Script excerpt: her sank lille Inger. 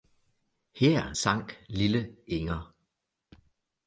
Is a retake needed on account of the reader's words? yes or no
no